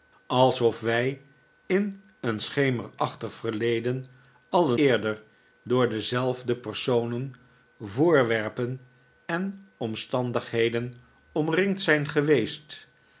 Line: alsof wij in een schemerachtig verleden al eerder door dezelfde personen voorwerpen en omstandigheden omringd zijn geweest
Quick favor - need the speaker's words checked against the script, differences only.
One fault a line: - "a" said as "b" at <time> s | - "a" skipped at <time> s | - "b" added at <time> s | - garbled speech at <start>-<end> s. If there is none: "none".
none